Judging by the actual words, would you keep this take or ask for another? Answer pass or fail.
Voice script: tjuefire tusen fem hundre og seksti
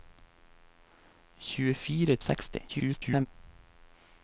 fail